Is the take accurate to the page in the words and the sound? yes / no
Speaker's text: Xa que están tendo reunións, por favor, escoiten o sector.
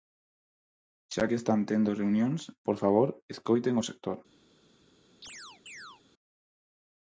no